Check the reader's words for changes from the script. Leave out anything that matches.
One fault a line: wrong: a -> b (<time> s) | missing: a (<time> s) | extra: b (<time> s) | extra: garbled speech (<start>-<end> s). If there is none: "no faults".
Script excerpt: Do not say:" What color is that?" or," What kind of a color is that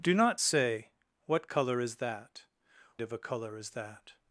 missing: or What kind (2.4 s)